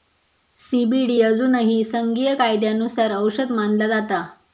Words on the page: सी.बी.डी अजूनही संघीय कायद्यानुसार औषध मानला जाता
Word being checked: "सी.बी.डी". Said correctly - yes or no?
yes